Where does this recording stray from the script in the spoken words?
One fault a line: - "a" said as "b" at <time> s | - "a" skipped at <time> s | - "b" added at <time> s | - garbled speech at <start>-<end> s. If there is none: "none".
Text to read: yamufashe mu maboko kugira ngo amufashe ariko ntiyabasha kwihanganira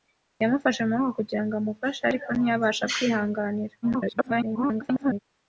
- garbled speech at 3.8-5.2 s